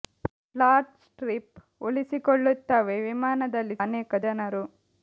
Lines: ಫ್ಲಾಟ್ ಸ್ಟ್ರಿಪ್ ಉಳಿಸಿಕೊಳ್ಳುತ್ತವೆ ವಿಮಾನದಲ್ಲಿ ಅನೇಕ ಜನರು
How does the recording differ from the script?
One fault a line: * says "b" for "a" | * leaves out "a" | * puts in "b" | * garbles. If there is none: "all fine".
all fine